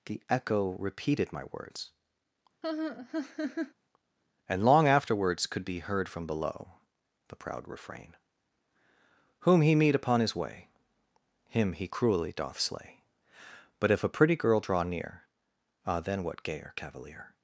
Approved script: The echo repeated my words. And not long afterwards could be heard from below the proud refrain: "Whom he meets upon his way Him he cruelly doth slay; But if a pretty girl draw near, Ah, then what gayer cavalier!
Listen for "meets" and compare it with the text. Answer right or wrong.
wrong